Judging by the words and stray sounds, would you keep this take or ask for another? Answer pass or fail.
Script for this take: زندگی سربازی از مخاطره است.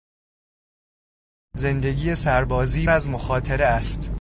pass